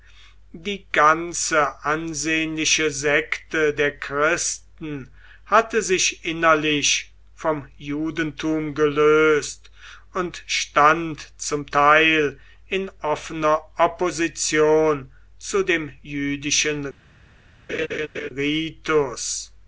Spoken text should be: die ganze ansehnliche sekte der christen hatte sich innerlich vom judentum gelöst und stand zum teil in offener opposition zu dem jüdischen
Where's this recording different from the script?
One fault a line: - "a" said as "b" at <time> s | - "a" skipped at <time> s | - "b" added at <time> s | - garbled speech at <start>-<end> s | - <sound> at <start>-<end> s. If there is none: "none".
- laugh at 17.7-18.3 s